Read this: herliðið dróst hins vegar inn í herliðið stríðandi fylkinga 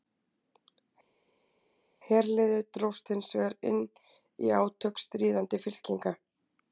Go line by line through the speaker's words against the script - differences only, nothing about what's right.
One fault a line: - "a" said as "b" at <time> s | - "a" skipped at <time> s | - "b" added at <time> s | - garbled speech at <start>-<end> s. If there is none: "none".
- "herliðið" said as "átök" at 4.6 s